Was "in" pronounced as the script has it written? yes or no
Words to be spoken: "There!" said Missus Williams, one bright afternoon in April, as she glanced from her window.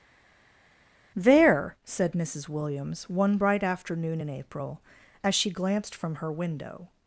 yes